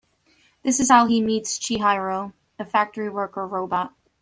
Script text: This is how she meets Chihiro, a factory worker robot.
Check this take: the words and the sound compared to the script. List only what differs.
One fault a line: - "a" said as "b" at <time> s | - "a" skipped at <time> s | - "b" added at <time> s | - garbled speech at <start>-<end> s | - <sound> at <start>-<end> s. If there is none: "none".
- "she" said as "he" at 1.0 s